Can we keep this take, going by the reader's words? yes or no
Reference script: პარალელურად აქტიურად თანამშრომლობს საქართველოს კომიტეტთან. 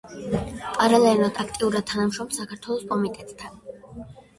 yes